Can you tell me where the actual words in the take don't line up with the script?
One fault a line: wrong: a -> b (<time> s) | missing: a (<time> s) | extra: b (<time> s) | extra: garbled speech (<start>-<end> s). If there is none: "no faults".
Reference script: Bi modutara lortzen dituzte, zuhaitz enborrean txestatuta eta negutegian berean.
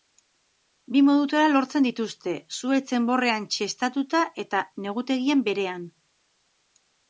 no faults